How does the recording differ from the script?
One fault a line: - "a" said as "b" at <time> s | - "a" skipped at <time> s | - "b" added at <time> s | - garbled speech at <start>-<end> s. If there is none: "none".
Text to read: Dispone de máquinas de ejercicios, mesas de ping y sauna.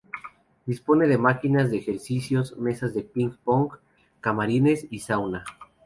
- "pong camarines" added at 3.4 s